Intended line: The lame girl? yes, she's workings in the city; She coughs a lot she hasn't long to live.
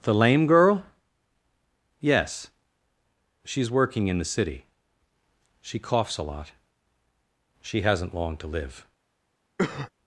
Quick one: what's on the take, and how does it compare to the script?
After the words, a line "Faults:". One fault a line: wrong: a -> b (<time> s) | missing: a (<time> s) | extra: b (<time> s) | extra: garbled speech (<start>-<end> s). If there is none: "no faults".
The lame girl? yes, she's working in the city; She coughs a lot she hasn't long to live.
Faults:
wrong: workings -> working (3.7 s)